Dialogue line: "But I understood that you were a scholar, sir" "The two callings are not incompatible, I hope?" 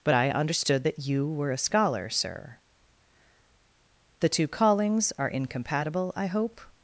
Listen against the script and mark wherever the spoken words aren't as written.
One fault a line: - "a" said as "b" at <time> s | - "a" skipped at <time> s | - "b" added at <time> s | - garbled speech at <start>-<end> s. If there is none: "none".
- "not" skipped at 5.3 s